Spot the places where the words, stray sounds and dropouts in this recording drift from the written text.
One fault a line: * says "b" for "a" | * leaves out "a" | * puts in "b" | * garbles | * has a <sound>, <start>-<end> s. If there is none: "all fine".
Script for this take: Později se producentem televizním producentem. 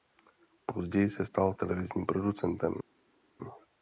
* says "stal" for "producentem"